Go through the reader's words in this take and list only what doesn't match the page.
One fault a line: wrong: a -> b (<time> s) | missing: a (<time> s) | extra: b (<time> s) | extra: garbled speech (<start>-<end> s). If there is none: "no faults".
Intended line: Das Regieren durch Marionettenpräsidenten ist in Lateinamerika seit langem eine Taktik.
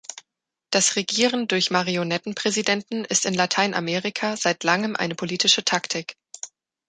extra: politische (5.1 s)